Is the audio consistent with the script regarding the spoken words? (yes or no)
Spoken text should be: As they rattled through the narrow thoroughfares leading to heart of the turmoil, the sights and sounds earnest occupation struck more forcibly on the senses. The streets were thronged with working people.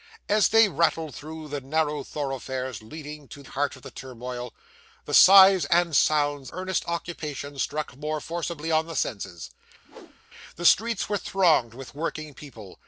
yes